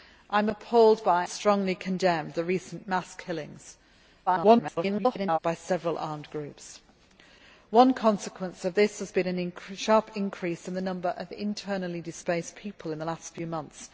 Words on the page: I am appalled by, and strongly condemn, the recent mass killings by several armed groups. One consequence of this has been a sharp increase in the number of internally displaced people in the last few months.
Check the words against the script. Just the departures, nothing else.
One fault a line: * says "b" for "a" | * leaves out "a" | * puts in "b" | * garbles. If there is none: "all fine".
* leaves out "and"
* garbles